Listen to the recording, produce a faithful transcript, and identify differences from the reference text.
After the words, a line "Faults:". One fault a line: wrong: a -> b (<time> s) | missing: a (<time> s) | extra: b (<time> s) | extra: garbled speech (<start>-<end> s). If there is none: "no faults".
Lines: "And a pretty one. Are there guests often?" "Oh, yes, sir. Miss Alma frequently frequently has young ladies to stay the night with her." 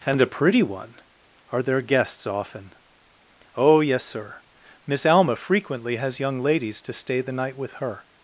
"And a pretty one. Are there guests often?" "Oh, yes, sir. Miss Alma frequently has young ladies to stay the night with her."
Faults:
missing: frequently (6.0 s)